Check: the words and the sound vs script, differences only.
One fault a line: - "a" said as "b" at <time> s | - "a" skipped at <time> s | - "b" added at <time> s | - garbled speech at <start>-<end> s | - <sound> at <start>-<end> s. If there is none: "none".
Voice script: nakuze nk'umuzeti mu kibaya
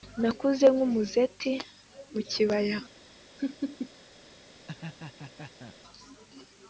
- laugh at 3.4-3.9 s
- laugh at 4.7-5.8 s